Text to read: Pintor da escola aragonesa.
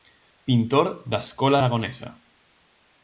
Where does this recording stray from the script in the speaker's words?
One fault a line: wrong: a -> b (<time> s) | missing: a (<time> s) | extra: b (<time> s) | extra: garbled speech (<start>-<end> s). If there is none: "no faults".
no faults